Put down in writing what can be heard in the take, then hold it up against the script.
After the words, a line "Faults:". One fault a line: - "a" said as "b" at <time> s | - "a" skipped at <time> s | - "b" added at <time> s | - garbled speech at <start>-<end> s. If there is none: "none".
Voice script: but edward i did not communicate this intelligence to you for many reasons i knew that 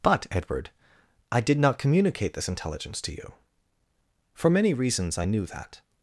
but edward i did not communicate this intelligence to you for many reasons i knew that
Faults:
none